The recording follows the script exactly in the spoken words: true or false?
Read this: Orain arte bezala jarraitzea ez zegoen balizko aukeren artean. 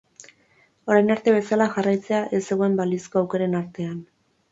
true